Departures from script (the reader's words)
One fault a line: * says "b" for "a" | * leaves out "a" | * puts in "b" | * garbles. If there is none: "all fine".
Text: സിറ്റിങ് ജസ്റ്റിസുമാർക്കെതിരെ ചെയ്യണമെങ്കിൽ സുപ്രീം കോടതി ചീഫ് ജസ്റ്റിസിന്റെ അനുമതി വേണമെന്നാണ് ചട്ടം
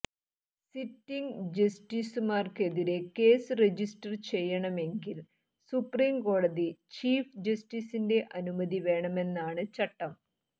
* puts in "കേസ് രജിസ്റ്റർ"